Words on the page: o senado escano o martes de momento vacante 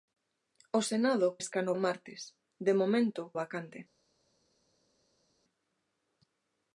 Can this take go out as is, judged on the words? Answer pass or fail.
pass